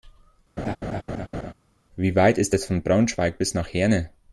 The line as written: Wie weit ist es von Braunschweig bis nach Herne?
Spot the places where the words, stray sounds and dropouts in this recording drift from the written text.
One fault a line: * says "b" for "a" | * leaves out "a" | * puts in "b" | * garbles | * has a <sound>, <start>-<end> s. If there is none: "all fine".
* has a laugh, 0.6-1.5 s